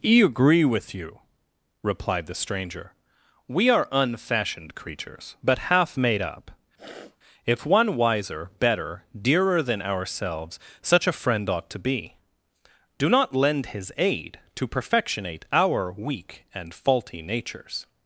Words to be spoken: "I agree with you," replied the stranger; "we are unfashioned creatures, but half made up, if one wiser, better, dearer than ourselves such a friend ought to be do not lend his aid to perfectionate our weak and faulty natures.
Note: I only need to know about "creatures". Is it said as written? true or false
true